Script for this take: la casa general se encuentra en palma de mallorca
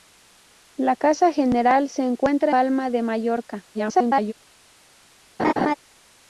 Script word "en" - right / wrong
wrong